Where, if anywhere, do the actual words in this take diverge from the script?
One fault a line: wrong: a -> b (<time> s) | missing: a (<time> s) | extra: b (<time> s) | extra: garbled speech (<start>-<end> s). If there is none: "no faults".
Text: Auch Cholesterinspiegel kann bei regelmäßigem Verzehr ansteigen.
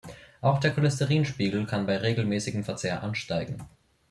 extra: der (0.6 s)